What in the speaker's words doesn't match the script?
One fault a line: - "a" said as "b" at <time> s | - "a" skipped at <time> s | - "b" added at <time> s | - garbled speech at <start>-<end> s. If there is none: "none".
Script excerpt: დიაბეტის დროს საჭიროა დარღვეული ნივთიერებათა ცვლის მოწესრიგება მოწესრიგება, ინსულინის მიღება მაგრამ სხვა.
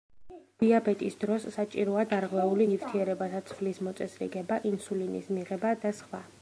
- "მოწესრიგება" skipped at 4.6 s
- "მაგრამ" said as "და" at 5.9 s